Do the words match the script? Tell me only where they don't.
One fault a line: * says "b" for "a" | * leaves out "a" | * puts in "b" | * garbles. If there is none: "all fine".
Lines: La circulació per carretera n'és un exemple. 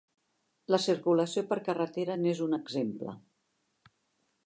all fine